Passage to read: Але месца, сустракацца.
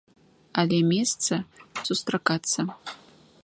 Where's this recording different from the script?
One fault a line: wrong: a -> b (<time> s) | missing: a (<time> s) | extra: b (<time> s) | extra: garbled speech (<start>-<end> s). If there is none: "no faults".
no faults